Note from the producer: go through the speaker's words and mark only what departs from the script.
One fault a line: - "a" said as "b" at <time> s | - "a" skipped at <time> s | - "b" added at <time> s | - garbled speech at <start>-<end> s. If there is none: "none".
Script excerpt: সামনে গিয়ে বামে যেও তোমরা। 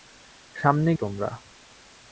- "গিয়ে বামে যেও" skipped at 0.9 s